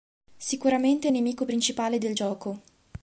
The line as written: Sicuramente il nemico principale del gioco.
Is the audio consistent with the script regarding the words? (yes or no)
yes